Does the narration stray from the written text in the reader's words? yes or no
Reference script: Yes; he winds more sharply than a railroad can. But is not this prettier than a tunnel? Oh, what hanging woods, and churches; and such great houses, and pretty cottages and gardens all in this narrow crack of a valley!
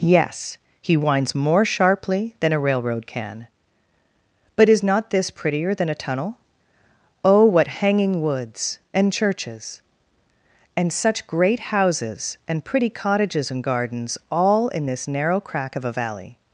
no